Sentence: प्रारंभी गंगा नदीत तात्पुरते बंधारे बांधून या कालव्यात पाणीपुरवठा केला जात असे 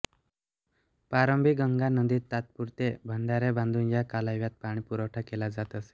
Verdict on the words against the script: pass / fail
pass